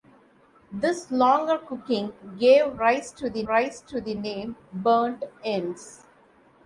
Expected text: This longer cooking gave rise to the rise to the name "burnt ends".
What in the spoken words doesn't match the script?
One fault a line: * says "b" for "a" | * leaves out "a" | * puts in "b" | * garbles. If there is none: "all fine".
all fine